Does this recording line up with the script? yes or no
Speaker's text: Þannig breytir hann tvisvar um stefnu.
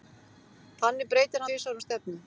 no